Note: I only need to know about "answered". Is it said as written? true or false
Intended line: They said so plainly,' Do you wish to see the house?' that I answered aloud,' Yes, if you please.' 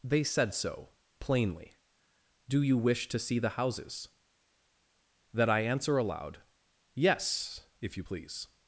false